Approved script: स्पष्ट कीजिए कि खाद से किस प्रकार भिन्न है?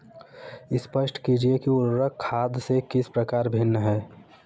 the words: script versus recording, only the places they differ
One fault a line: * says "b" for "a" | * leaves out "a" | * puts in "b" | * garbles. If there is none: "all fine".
* puts in "उर्वरक"